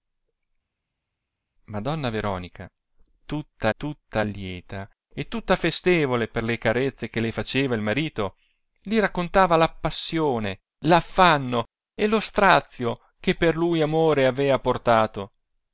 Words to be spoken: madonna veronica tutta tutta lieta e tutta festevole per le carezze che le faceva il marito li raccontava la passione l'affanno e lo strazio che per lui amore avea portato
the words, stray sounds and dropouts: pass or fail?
pass